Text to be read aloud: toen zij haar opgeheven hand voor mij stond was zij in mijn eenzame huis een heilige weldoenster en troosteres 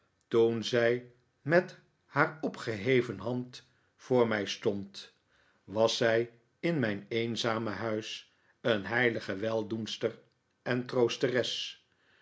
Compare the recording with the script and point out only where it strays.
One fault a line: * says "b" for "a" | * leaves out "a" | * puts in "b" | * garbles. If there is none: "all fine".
* puts in "met"